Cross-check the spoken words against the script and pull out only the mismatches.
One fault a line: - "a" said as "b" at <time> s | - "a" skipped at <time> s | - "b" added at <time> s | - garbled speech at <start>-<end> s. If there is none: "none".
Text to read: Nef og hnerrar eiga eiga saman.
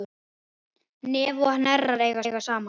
none